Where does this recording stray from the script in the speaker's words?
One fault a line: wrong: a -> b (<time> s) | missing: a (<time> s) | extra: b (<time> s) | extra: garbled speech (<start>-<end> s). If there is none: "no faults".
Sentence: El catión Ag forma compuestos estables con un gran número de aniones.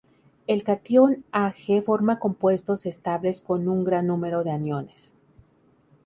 no faults